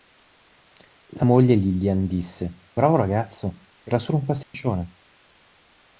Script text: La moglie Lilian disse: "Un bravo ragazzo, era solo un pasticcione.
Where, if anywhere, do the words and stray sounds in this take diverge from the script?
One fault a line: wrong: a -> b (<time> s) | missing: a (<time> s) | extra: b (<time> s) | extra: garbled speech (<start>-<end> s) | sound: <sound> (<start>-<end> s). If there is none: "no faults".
missing: Un (2.6 s)
sound: dropout (4.4-4.5 s)